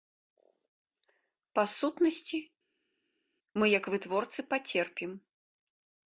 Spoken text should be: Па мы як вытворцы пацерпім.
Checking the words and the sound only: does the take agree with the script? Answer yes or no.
no